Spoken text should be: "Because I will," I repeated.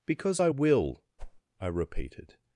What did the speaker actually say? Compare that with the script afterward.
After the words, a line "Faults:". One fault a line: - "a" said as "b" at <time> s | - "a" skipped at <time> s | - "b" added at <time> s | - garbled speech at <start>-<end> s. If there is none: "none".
"Because I will," I repeated.
Faults:
none